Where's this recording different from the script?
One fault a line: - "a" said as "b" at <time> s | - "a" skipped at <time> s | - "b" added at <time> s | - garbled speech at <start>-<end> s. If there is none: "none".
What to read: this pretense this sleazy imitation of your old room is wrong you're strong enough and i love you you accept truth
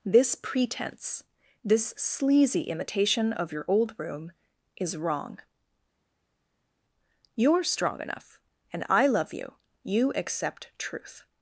none